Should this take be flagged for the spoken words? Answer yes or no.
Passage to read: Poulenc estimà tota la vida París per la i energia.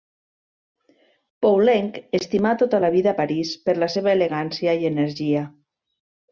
yes